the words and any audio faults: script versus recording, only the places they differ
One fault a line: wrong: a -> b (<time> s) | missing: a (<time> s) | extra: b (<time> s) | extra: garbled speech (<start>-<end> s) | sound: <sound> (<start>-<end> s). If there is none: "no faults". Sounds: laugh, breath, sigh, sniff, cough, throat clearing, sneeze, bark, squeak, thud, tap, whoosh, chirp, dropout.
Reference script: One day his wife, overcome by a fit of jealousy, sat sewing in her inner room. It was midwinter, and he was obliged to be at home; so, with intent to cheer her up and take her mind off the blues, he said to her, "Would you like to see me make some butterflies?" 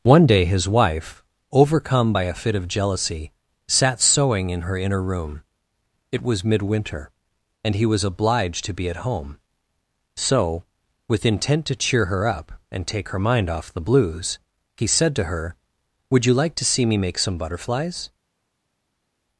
no faults